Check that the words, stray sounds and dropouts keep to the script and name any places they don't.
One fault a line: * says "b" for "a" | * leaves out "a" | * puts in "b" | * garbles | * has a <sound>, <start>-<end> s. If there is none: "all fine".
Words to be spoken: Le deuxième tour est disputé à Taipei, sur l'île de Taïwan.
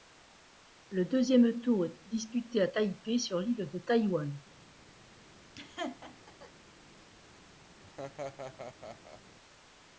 * has a laugh, 5.6-6.5 s
* has a laugh, 7.8-9.2 s